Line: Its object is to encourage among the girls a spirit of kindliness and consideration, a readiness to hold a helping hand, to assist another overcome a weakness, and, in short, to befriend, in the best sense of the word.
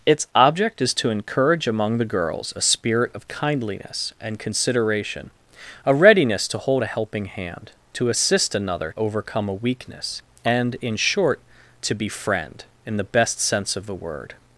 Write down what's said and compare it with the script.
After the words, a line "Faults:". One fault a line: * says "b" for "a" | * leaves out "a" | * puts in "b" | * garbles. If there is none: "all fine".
Its object is to encourage among the girls a spirit of kindliness and consideration, a readiness to hold a helping hand, to assist another overcome a weakness, and, in short, to befriend, in the best sense of the word.
Faults:
all fine